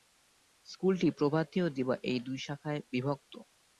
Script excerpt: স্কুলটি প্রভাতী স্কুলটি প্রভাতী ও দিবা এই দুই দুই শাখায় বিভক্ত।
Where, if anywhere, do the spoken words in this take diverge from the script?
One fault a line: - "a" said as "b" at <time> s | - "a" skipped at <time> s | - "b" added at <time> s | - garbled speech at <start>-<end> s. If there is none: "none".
- "স্কুলটি প্রভাতী" skipped at 1.6 s
- "দুই" skipped at 2.4 s